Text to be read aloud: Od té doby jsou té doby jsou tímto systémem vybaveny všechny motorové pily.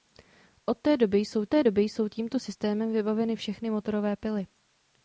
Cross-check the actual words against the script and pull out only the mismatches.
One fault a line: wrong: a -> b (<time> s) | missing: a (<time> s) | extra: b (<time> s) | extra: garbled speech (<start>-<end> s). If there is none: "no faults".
no faults